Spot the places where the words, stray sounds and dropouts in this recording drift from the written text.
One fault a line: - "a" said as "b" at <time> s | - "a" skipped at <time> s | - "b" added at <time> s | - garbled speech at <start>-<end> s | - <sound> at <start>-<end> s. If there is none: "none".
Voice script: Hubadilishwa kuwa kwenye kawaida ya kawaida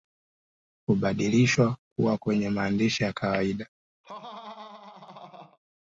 - "kawaida" said as "maandishi" at 2.5 s
- laugh at 4.0-5.6 s